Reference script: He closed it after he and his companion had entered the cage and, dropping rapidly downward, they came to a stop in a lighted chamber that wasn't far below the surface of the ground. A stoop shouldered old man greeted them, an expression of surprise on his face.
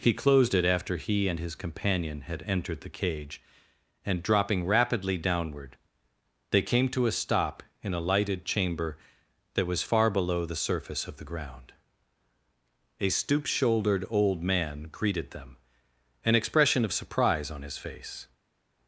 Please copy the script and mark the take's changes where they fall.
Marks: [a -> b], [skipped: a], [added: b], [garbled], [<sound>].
He closed it after he and his companion had entered the cage and, dropping rapidly downward, they came to a stop in a lighted chamber that [wasn't -> was] far below the surface of the ground. A stoop shouldered old man greeted them, an expression of surprise on his face.